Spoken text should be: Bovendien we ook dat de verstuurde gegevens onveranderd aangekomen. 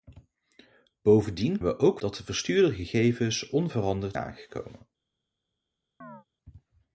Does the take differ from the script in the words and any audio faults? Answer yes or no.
yes